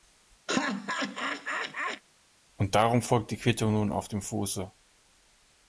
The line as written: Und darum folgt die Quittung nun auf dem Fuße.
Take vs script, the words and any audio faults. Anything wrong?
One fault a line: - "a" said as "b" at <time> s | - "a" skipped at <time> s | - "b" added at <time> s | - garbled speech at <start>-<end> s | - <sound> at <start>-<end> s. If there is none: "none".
- laugh at 0.5-2.0 s